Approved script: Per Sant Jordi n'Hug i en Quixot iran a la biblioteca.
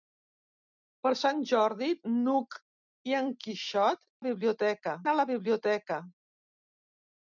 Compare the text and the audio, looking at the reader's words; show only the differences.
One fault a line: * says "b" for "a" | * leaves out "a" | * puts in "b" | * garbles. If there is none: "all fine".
* says "biblioteca" for "iran"